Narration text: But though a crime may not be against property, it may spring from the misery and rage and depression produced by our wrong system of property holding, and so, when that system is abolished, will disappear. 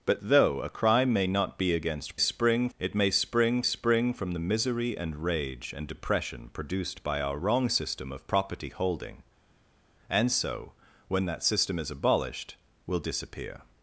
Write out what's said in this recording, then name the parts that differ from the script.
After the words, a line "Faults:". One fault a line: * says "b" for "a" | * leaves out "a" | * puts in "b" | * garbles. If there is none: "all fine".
But though a crime may not be against spring, it may spring spring from the misery and rage and depression produced by our wrong system of property holding, and so, when that system is abolished, will disappear.
Faults:
* says "spring" for "property"
* puts in "spring"